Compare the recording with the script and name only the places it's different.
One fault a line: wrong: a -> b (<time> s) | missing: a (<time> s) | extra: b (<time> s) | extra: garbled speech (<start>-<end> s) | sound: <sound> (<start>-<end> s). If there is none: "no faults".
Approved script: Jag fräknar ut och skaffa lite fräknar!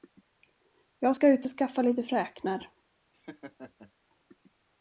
wrong: fräknar -> ska (1.1 s)
sound: laugh (3.1-3.9 s)